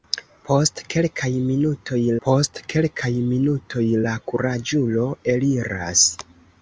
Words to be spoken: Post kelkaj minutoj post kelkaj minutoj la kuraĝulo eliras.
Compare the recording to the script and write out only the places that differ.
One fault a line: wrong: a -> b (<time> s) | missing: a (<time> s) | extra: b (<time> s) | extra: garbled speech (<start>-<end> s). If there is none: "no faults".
no faults